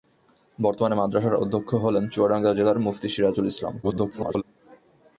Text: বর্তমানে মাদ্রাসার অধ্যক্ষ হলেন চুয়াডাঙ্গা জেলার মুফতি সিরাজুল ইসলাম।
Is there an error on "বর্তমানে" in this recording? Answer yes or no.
no